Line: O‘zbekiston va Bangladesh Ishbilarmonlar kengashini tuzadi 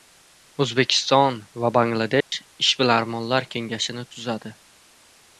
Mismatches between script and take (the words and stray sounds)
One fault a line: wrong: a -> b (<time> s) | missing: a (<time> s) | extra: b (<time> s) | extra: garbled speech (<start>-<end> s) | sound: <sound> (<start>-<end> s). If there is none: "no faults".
sound: dropout (2.2-2.3 s)